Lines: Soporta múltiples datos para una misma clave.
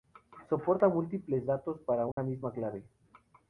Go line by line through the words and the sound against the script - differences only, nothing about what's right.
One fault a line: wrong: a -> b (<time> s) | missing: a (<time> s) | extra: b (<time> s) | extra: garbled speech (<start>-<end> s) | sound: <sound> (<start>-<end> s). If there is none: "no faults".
sound: dropout (2.1-2.2 s)